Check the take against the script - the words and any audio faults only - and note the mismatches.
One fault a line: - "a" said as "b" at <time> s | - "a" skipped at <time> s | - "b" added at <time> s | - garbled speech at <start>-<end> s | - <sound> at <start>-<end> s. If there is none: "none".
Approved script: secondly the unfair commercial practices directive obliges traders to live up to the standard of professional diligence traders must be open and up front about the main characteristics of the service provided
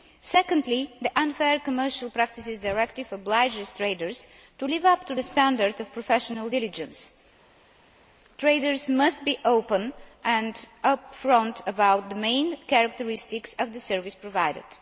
none